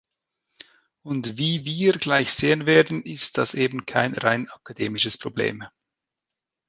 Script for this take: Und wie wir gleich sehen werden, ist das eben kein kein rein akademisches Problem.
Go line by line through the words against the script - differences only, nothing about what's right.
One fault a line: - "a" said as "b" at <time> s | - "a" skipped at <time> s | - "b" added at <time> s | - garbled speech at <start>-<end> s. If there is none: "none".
- "kein" skipped at 4.2 s